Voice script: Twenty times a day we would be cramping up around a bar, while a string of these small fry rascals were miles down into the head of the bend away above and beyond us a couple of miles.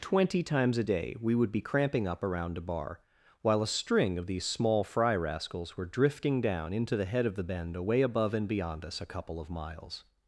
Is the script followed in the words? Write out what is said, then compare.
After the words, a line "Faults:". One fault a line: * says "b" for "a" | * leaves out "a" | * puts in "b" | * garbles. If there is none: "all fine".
Twenty times a day we would be cramping up around a bar, while a string of these small fry rascals were drifting down into the head of the bend away above and beyond us a couple of miles.
Faults:
* says "drifting" for "miles"